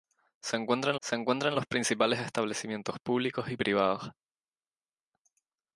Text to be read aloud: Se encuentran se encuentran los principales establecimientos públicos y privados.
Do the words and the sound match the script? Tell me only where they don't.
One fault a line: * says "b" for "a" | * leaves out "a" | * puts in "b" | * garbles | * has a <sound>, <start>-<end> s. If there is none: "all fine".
all fine